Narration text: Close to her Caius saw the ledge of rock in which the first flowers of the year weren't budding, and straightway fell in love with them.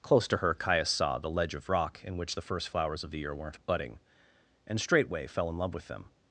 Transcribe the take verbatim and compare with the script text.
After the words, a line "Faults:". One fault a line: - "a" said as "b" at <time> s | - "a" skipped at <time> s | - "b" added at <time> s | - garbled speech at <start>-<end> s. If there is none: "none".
Close to her Caius saw the ledge of rock in which the first flowers of the year weren't budding, and straightway fell in love with them.
Faults:
none